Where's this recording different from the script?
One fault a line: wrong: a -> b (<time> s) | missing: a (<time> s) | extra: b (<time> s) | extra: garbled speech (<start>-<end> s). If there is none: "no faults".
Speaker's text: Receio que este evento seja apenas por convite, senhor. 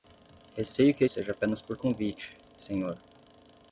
missing: este evento (1.1 s)